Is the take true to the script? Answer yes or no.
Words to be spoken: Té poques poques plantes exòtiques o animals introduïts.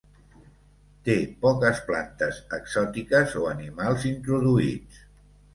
no